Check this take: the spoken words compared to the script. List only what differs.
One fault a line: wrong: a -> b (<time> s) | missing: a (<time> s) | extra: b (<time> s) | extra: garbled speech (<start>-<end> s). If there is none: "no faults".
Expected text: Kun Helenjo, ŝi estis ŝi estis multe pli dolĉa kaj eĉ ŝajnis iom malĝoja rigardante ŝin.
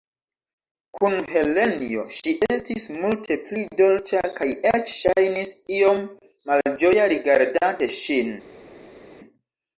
missing: ŝi estis (2.9 s)